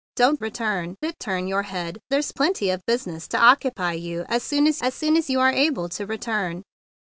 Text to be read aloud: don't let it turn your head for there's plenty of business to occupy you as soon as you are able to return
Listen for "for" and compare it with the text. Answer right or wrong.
wrong